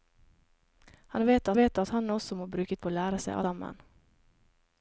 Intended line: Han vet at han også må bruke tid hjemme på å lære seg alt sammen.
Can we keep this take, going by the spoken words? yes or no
no